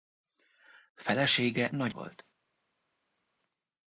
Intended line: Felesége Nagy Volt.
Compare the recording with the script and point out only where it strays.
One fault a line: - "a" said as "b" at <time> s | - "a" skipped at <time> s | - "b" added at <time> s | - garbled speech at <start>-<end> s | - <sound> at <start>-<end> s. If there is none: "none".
none